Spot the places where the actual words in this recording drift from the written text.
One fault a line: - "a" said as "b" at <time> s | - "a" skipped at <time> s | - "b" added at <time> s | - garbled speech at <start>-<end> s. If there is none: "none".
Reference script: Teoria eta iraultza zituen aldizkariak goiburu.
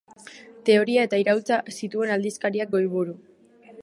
none